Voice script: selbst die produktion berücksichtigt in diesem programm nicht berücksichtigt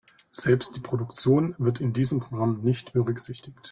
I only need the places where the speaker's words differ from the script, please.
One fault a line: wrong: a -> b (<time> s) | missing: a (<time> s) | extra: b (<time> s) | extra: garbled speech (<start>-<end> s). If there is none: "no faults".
wrong: berücksichtigt -> wird (1.6 s)